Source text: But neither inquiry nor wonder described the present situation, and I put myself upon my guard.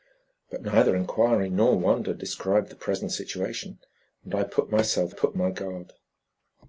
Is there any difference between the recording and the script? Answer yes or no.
yes